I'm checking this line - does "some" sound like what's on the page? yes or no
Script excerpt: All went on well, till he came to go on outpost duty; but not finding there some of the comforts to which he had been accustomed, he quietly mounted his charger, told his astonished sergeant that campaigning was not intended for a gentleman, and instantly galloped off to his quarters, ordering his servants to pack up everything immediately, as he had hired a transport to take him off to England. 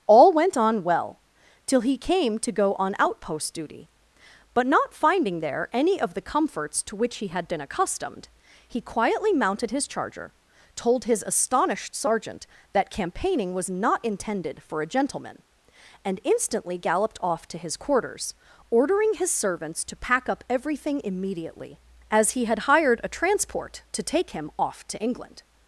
no